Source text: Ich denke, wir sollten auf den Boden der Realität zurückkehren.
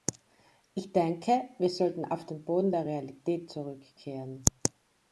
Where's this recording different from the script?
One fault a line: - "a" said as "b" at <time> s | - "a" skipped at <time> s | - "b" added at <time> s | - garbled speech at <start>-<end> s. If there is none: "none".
none